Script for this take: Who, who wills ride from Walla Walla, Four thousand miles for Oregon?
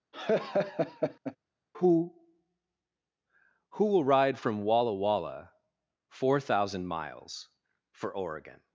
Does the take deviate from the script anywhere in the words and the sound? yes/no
yes